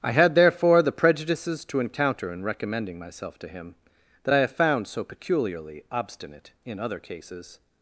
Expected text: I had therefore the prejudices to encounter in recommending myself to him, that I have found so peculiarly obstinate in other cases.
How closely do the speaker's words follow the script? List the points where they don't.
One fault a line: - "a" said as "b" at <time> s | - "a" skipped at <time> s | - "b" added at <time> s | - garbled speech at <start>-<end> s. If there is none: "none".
none